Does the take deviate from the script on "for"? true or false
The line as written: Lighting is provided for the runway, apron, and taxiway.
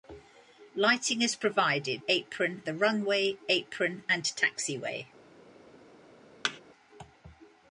true